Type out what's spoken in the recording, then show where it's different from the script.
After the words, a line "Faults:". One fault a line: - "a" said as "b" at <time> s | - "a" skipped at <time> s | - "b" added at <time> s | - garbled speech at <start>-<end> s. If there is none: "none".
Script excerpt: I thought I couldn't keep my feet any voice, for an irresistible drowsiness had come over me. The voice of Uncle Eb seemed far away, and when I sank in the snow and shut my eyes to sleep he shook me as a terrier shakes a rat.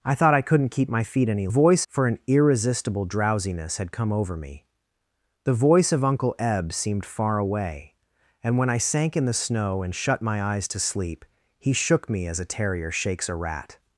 I thought I couldn't keep my feet any voice, for an irresistible drowsiness had come over me. The voice of Uncle Eb seemed far away, and when I sank in the snow and shut my eyes to sleep he shook me as a terrier shakes a rat.
Faults:
none